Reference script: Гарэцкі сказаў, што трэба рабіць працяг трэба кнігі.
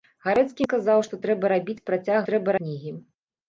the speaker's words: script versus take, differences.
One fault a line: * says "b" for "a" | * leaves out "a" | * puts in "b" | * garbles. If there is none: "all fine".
all fine